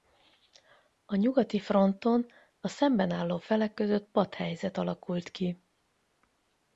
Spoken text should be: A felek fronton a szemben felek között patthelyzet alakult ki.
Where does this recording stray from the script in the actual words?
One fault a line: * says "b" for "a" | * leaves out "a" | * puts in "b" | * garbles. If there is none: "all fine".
* says "nyugati" for "felek"
* puts in "álló"